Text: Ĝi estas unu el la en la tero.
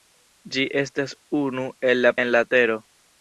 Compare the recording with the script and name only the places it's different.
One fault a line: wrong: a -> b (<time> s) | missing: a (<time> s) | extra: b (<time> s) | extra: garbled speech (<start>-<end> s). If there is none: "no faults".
no faults